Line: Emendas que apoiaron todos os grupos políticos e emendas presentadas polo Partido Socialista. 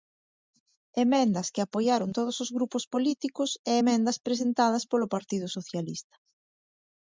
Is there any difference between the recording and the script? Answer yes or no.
no